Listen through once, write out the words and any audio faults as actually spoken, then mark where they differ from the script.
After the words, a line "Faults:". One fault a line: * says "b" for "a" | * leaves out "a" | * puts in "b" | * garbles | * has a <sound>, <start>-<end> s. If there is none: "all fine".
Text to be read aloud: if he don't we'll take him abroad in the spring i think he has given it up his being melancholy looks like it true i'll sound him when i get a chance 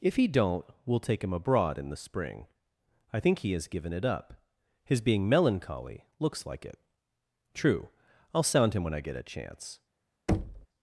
if he don't we'll take him abroad in the spring i think he has given it up his being melancholy looks like it true i'll sound him when i get a chance
Faults:
* has a thud, 10.3-10.7 s